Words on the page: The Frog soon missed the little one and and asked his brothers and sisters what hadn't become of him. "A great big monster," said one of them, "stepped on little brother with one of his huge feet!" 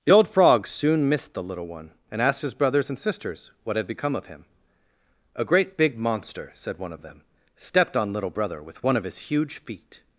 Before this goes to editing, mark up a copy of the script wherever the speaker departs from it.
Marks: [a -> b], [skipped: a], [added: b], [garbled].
The [added: old] Frog soon missed the little one and [skipped: and] asked his brothers and sisters what [hadn't -> had] become of him. "A great big monster," said one of them, "stepped on little brother with one of his huge feet!"